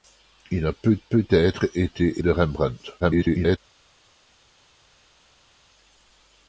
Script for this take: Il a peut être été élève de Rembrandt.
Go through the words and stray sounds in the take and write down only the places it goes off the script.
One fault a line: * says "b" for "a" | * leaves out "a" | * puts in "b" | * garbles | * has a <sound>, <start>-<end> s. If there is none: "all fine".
* puts in "peut"
* leaves out "élève"
* garbles